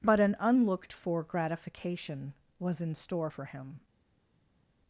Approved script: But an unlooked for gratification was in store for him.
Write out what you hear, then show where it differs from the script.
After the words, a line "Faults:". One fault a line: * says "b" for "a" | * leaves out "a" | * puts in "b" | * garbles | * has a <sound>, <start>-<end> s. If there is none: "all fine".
But an unlooked for gratification was in store for him.
Faults:
all fine